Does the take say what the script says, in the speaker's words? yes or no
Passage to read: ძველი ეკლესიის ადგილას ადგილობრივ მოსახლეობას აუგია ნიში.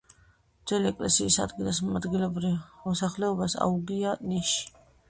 yes